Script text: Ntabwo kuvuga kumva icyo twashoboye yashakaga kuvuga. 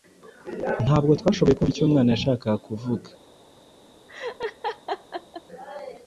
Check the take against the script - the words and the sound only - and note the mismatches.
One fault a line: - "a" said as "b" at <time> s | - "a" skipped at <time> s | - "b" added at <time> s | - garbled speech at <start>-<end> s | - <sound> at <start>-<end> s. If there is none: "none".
- "kuvuga" said as "twashoboye" at 1.2 s
- "twashoboye" said as "umwana" at 1.9 s
- laugh at 4.1-5.4 s